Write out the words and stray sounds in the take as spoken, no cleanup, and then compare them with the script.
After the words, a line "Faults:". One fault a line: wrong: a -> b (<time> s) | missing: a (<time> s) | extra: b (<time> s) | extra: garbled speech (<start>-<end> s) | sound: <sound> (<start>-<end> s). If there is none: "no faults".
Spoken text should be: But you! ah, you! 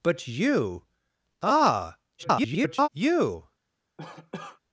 But you! ah, [garbled] you!
Faults:
extra: garbled speech (2.2-2.9 s)
sound: cough (4.0-4.6 s)